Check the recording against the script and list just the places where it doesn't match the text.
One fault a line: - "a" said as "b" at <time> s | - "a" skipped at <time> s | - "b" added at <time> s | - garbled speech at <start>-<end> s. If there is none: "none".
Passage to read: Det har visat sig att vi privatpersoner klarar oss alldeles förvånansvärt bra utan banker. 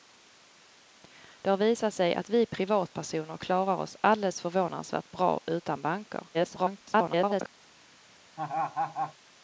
- garbled speech at 6.3-7.5 s